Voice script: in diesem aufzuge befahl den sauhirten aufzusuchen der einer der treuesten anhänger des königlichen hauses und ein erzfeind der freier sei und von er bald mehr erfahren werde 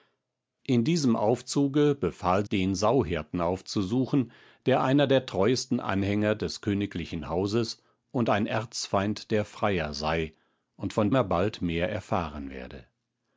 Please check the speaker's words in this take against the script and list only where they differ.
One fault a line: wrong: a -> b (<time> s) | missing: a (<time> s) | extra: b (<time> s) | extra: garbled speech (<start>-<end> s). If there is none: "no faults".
no faults